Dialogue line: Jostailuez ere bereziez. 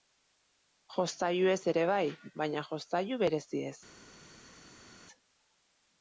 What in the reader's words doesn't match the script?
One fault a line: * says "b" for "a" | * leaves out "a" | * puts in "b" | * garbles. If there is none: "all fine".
* puts in "bai baina jostailu"